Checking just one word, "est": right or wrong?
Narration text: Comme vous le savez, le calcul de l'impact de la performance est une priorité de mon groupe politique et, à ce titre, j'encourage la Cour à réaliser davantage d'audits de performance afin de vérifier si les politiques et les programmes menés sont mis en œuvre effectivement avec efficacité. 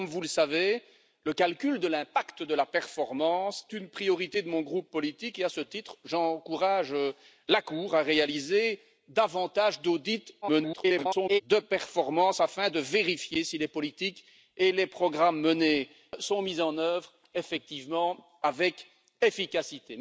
wrong